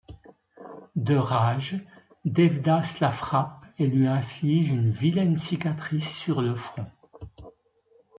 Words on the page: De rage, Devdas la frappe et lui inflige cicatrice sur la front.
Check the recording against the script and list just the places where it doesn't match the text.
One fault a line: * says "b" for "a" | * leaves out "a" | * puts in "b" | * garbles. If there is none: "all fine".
* puts in "une vilaine"
* says "le" for "la"